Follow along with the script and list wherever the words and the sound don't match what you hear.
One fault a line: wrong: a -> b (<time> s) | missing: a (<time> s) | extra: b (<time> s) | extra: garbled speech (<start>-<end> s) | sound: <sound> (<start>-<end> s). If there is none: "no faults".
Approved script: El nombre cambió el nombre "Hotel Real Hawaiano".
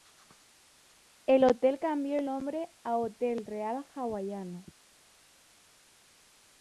wrong: nombre -> hotel (1.4 s)
extra: a (2.8 s)